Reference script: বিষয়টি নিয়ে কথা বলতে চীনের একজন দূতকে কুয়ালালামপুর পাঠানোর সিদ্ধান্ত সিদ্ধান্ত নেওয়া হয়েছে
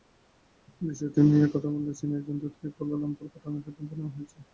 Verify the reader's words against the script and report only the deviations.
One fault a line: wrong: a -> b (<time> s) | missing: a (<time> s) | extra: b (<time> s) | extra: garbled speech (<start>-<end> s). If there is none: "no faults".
missing: সিদ্ধান্ত (3.9 s)